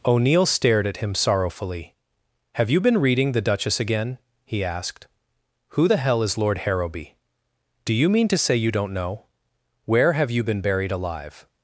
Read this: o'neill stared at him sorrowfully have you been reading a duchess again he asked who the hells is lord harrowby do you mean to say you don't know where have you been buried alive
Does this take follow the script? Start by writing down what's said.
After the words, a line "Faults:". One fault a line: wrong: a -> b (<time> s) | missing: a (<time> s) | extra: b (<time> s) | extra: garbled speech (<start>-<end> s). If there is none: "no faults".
o'neill stared at him sorrowfully have you been reading the duchess again he asked who the hell is lord harrowby do you mean to say you don't know where have you been buried alive
Faults:
wrong: a -> the (3.3 s)
wrong: hells -> hell (6.0 s)